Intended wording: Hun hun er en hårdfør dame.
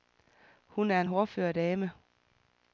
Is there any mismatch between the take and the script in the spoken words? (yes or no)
yes